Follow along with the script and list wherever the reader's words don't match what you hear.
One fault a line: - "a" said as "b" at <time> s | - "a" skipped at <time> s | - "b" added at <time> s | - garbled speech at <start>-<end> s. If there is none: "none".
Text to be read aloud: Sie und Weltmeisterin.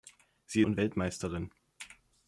none